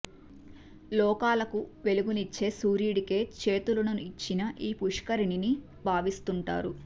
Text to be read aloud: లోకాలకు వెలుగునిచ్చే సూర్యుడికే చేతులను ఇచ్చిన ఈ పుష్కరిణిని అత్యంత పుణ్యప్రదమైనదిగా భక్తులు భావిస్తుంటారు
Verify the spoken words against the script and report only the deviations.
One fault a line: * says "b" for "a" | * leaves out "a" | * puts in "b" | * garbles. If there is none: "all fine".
* leaves out "అత్యంత పుణ్యప్రదమైనదిగా భక్తులు"